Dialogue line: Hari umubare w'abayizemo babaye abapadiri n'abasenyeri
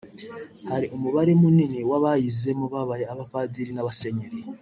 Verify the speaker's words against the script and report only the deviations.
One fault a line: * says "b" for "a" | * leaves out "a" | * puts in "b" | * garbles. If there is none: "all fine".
* puts in "munini"